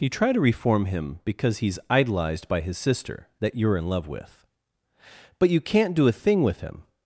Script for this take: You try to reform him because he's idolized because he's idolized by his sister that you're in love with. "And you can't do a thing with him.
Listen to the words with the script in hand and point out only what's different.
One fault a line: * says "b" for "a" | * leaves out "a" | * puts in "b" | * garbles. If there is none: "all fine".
* leaves out "because he's idolized"
* says "But" for "And"